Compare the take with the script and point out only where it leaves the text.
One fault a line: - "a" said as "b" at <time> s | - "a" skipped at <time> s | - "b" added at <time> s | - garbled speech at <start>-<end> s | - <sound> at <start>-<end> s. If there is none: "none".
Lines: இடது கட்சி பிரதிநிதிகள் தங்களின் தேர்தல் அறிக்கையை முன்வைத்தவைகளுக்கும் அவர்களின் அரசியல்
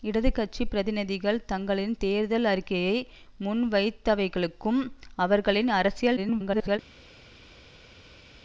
- garbled speech at 6.2-6.8 s